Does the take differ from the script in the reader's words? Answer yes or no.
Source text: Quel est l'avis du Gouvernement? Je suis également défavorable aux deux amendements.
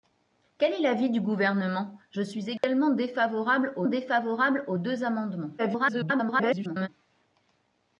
yes